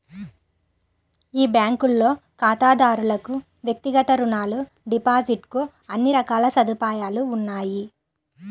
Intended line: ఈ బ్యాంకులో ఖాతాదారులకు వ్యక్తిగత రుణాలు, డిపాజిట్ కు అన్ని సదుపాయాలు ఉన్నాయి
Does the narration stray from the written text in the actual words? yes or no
yes